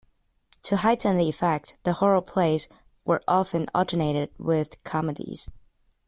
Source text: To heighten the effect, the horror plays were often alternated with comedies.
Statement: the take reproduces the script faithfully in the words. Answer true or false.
true